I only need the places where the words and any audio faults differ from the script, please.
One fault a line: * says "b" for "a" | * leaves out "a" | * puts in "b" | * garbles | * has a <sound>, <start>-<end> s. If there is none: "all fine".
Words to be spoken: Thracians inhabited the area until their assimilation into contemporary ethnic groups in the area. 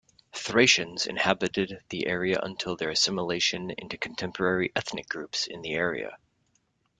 all fine